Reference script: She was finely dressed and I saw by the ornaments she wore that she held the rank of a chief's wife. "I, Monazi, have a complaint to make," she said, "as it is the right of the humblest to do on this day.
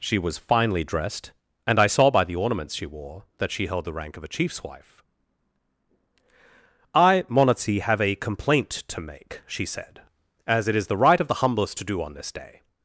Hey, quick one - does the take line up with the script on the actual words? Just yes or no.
yes